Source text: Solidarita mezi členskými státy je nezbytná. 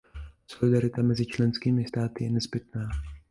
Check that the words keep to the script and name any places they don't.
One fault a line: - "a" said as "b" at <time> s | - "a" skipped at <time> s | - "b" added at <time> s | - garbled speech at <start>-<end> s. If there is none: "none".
none